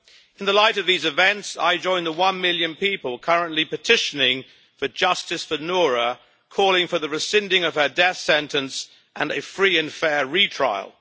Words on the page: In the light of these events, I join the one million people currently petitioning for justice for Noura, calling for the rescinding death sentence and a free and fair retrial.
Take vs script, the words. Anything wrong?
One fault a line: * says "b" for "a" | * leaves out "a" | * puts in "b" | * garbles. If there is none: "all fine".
* puts in "of her"